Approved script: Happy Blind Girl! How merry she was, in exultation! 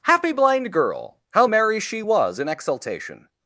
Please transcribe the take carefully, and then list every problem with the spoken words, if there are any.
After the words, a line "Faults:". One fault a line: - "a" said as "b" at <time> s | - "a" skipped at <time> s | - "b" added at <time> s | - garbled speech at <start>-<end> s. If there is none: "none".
Happy Blind Girl! How merry she was, in exultation!
Faults:
none